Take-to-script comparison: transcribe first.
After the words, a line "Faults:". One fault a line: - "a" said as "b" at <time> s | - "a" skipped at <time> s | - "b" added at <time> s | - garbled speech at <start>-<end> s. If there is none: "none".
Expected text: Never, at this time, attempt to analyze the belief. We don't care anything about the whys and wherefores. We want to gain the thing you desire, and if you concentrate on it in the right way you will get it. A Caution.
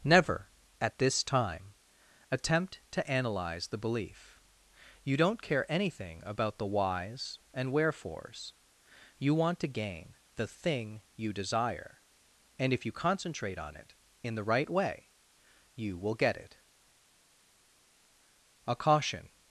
Never, at this time, attempt to analyze the belief. You don't care anything about the whys and wherefores. You want to gain the thing you desire, and if you concentrate on it in the right way you will get it. A Caution.
Faults:
- "We" said as "You" at 5.0 s
- "We" said as "You" at 9.2 s